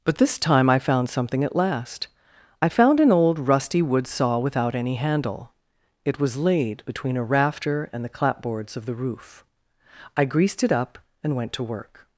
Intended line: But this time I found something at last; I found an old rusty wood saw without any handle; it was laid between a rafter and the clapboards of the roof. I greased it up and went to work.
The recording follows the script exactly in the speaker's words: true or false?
true